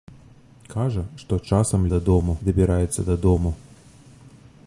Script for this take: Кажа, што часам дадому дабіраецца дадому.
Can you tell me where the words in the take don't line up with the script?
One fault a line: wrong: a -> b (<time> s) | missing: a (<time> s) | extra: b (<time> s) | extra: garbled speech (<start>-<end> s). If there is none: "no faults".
no faults